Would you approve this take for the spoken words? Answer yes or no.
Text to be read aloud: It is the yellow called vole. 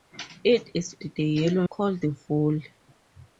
yes